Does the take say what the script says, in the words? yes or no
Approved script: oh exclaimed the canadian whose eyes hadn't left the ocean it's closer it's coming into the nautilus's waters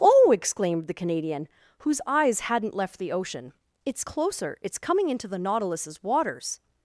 yes